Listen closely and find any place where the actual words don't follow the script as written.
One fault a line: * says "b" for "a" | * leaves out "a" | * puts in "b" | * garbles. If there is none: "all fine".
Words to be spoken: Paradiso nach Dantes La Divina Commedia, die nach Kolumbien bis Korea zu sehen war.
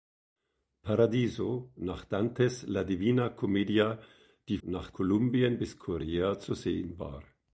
all fine